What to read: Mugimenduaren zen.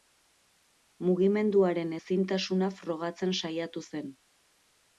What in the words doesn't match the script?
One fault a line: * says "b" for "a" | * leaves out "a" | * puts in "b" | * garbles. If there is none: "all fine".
* puts in "ezintasuna frogatzen saiatu"